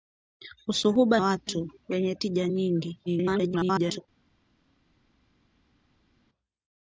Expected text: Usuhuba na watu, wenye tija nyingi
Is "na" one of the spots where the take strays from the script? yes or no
yes